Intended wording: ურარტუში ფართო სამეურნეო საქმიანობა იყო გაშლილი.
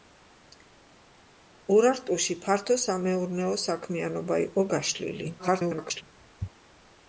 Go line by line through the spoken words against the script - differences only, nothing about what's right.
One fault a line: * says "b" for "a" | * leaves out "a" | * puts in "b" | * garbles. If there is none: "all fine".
* garbles